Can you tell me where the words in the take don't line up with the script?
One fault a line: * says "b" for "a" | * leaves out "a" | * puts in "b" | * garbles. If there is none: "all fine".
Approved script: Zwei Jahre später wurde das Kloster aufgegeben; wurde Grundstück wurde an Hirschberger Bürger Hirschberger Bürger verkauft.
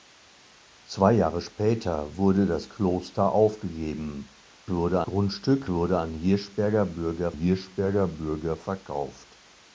all fine